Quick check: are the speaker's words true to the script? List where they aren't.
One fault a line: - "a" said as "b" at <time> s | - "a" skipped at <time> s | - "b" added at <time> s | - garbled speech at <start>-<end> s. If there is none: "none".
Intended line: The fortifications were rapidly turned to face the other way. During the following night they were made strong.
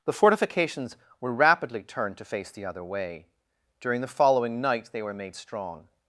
none